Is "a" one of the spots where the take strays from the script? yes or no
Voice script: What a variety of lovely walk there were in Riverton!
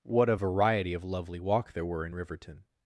no